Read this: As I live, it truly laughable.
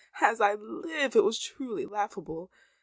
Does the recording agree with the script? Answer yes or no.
no